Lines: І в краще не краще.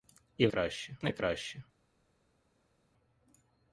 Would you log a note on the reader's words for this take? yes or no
no